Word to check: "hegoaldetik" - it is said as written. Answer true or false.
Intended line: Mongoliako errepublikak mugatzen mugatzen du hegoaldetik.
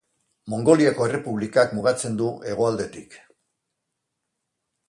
true